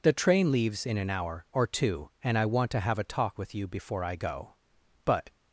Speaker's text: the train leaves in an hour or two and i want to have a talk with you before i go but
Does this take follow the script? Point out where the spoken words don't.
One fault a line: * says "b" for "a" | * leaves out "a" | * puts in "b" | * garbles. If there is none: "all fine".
all fine